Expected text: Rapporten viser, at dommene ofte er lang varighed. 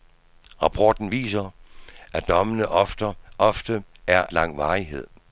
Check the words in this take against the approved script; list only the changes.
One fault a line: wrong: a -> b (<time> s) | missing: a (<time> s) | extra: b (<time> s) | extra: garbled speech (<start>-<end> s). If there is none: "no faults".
no faults